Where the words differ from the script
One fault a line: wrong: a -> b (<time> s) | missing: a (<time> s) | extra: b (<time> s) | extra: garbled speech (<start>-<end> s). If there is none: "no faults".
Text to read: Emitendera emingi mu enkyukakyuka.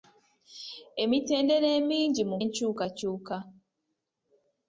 no faults